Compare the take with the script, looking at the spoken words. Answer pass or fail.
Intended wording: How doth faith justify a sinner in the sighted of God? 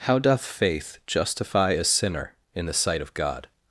fail